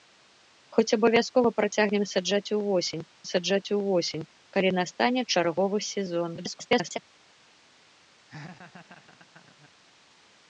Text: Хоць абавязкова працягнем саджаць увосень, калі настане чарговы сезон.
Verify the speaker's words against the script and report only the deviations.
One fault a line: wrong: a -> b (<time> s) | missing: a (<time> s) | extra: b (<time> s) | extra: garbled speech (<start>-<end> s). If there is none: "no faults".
extra: саджаць увосень (3.3 s)
extra: garbled speech (6.4-7.0 s)